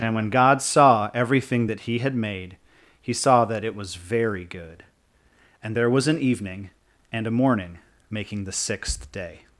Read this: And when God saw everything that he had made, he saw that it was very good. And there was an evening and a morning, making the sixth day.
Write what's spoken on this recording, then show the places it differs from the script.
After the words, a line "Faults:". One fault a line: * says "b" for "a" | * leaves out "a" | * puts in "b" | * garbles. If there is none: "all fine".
And when God saw everything that he had made, he saw that it was very good. And there was an evening and a morning, making the sixth day.
Faults:
all fine